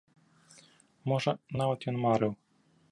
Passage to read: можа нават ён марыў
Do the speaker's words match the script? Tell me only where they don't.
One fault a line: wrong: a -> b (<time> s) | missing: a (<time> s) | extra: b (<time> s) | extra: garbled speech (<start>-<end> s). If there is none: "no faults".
no faults